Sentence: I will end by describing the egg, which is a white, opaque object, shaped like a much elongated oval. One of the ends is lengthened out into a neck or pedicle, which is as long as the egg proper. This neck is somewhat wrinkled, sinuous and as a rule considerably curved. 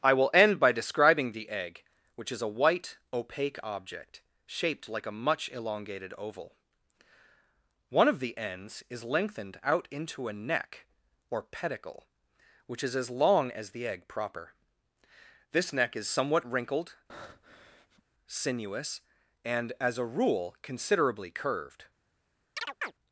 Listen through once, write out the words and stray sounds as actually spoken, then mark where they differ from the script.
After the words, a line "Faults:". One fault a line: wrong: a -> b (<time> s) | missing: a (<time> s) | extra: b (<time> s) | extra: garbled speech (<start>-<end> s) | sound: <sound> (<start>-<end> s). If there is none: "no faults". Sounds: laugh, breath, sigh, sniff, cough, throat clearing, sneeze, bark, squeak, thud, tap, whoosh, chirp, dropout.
I will end by describing the egg, which is a white, opaque object, shaped like a much elongated oval. One of the ends is lengthened out into a neck or pedicle, which is as long as the egg proper. This neck is somewhat wrinkled, sinuous and as a rule considerably curved.
Faults:
sound: breath (17.1-18.0 s)
sound: chirp (22.6-22.9 s)